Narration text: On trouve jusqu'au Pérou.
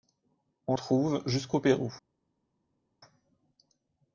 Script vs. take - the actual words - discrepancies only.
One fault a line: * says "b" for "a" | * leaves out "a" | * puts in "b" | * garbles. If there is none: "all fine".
all fine